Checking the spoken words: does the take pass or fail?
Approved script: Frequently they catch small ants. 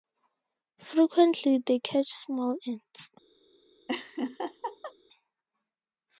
pass